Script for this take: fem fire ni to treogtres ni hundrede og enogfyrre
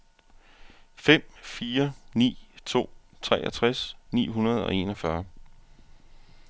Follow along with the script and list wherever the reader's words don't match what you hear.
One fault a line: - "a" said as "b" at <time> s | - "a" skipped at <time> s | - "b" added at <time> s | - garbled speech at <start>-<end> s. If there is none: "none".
none